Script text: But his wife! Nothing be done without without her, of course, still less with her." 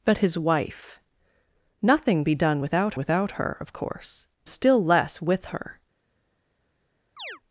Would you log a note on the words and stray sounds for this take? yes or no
yes